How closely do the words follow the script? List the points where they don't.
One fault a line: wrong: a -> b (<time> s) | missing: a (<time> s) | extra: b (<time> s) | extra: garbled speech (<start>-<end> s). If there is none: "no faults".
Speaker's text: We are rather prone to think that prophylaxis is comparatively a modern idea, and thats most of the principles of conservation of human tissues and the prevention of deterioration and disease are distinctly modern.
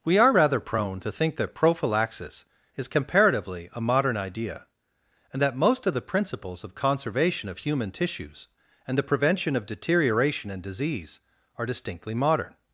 wrong: thats -> that (5.4 s)